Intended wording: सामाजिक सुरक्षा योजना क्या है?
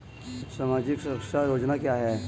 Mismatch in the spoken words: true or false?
false